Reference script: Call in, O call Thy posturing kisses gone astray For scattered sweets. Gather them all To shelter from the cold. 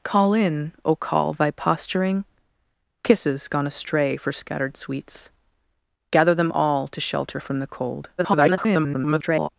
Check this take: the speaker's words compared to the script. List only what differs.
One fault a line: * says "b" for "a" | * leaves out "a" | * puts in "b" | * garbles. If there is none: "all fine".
* garbles